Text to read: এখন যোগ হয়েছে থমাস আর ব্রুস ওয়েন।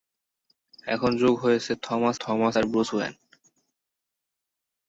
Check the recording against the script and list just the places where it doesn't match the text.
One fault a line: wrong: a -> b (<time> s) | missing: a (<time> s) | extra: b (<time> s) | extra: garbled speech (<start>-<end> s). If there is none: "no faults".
extra: থমাস (2.2 s)